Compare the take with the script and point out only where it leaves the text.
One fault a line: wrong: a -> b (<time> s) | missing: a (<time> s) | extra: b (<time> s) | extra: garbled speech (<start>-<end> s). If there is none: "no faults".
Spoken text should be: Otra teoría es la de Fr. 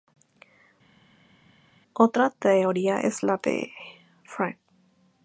no faults